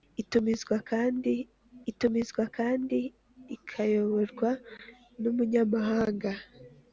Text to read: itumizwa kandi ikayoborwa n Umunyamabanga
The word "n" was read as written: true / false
true